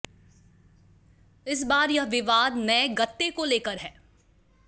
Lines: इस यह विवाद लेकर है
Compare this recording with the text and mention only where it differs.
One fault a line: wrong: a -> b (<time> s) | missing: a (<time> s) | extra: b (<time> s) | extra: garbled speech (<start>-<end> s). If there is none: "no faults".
extra: बार (1.6 s)
extra: नए गत्ते को (2.5 s)